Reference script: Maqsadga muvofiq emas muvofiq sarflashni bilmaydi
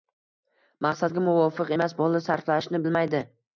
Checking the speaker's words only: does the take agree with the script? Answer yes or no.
no